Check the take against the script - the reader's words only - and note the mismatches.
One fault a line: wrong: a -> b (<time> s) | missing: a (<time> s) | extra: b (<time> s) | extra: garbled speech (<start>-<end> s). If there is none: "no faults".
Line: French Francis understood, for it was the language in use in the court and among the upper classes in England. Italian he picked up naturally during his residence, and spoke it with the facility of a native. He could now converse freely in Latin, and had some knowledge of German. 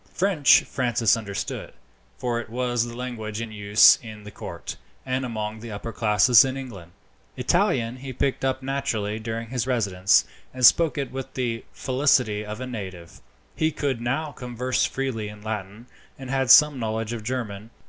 no faults